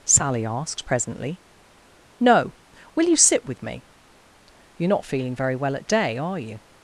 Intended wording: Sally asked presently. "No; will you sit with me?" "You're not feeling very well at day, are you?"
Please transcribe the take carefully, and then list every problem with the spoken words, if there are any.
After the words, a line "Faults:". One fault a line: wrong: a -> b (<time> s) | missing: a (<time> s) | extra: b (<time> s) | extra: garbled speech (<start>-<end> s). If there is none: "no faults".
Sally asked presently. "No; will you sit with me?" "You're not feeling very well at day, are you?"
Faults:
no faults